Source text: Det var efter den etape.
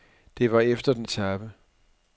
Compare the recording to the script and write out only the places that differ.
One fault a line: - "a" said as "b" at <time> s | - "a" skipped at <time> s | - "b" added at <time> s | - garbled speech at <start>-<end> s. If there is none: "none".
none